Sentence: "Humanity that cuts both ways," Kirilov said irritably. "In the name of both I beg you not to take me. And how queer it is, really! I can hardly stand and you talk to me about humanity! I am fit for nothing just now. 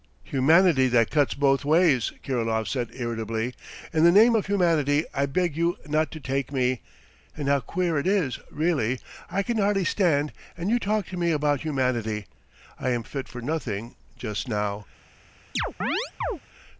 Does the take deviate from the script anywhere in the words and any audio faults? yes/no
yes